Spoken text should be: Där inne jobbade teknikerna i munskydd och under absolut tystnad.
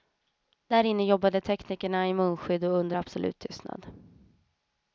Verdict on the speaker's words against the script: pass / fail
pass